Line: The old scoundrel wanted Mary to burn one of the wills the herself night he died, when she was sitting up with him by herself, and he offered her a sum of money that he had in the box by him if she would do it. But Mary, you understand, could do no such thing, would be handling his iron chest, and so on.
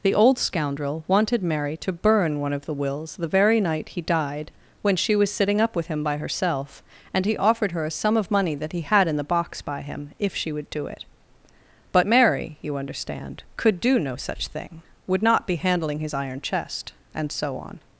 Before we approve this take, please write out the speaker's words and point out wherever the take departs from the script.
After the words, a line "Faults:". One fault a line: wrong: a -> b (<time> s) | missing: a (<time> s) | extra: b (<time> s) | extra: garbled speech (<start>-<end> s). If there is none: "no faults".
The old scoundrel wanted Mary to burn one of the wills the very night he died, when she was sitting up with him by herself, and he offered her a sum of money that he had in the box by him if she would do it. But Mary, you understand, could do no such thing, would not be handling his iron chest, and so on.
Faults:
wrong: herself -> very (3.3 s)
extra: not (15.2 s)